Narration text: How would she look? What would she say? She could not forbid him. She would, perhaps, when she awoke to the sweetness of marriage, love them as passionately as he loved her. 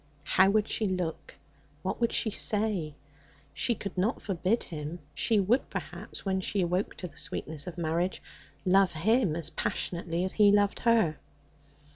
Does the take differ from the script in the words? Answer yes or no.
yes